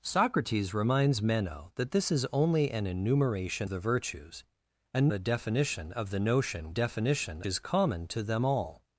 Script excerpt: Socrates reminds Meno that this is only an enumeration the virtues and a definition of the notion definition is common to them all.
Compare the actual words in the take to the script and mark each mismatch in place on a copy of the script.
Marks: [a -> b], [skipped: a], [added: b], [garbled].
Socrates reminds Meno that this is only an enumeration the virtues and a definition of the notion definition is common to them all.